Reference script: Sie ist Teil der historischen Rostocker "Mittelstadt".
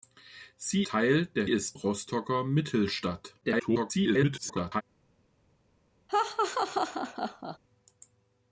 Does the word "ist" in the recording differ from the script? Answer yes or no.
yes